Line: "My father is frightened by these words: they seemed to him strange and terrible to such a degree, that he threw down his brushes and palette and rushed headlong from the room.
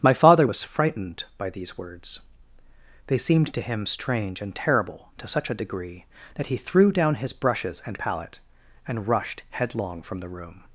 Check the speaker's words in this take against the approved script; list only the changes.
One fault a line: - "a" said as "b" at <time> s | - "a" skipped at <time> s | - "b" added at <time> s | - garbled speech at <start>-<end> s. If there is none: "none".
- "is" said as "was" at 0.4 s